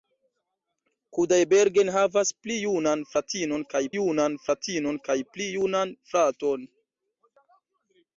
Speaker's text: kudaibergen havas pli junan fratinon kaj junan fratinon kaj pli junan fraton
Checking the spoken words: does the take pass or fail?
pass